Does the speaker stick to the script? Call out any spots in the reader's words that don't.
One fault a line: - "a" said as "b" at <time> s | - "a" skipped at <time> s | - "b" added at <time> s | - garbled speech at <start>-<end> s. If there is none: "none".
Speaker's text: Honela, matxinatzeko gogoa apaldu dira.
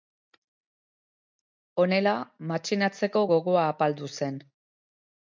- "dira" said as "zen" at 4.2 s